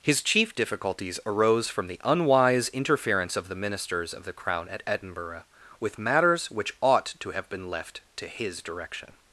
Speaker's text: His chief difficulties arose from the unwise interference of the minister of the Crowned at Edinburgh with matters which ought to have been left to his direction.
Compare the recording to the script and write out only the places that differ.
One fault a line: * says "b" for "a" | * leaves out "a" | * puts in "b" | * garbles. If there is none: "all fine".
* says "ministers" for "minister"
* says "Crown" for "Crowned"